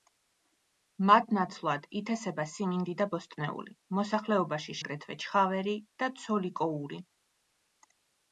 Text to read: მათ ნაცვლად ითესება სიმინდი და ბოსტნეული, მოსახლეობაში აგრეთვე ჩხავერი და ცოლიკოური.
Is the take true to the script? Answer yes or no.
yes